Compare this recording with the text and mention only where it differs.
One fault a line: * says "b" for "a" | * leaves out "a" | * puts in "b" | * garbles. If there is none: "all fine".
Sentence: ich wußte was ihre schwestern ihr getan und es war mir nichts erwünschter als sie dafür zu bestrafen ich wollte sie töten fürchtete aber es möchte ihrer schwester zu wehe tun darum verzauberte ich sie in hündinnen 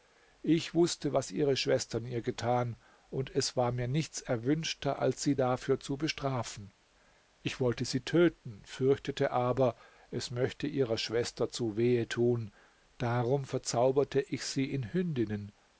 all fine